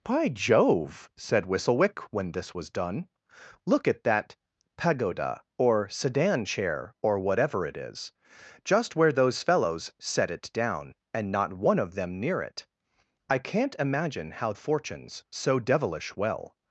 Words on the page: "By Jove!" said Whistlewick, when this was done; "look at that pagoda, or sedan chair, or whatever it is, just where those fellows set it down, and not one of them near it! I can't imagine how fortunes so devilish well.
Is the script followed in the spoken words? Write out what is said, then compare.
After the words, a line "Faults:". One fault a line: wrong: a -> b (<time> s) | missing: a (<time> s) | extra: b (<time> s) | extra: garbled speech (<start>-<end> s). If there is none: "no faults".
"By Jove!" said Whistlewick, when this was done; "look at that pagoda, or sedan chair, or whatever it is, just where those fellows set it down, and not one of them near it! I can't imagine how fortunes so devilish well.
Faults:
no faults